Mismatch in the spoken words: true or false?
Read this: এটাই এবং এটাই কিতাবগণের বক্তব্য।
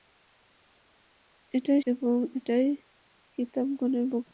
false